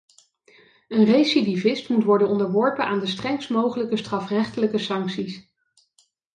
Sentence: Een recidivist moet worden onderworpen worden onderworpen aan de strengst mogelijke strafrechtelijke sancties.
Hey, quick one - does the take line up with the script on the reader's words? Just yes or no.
no